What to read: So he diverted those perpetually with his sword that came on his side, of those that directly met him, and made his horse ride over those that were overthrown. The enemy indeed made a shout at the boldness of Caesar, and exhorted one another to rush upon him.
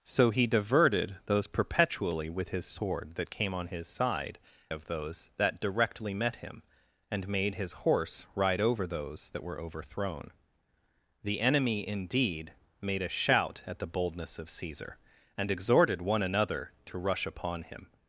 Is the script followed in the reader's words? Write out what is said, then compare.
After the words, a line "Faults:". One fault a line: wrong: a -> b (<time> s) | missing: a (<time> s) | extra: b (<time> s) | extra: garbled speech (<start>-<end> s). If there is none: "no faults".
So he diverted those perpetually with his sword that came on his side, of those that directly met him, and made his horse ride over those that were overthrown. The enemy indeed made a shout at the boldness of Caesar, and exhorted one another to rush upon him.
Faults:
no faults